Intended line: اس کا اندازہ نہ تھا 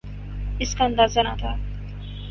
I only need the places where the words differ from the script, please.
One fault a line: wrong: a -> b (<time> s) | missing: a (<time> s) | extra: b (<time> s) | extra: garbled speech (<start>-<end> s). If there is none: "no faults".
no faults